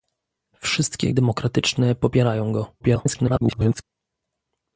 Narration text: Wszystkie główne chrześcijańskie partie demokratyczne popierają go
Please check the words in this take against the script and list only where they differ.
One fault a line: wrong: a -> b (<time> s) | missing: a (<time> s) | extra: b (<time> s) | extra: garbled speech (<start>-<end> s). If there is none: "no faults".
missing: główne chrześcijańskie partie (1.1 s)
extra: garbled speech (2.8-3.8 s)